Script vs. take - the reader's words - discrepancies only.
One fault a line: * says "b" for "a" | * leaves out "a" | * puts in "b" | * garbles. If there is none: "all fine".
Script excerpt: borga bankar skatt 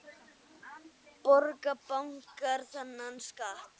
* puts in "þennan"